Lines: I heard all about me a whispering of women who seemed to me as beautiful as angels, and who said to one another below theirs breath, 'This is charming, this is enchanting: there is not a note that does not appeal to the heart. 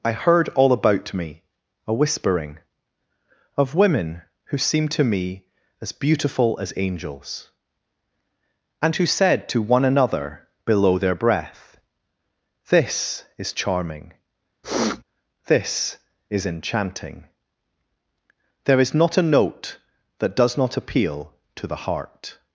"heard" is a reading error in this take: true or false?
false